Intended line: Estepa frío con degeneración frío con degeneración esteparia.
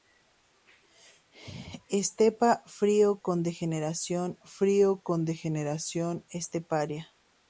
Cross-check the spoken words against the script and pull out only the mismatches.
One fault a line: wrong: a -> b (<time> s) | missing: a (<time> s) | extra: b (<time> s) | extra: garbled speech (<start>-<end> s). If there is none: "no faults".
no faults